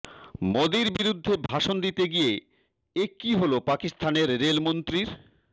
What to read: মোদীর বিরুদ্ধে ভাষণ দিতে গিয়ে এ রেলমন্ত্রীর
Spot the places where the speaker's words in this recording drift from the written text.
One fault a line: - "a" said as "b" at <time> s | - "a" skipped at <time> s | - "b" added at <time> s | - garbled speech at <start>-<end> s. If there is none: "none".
- "কী হল পাকিস্তানের" added at 3.2 s